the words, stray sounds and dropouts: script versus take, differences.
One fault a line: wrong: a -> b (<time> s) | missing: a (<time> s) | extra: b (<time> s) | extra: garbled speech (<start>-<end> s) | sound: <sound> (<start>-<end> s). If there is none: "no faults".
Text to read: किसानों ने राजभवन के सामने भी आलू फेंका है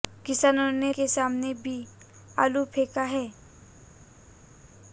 missing: राजभवन (0.9 s)